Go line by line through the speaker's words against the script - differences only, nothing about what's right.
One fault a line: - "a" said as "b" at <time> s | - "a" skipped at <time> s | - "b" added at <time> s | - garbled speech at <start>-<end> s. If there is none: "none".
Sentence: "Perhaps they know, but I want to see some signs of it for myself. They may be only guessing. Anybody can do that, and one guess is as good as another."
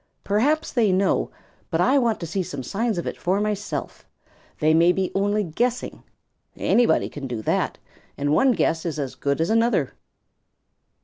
none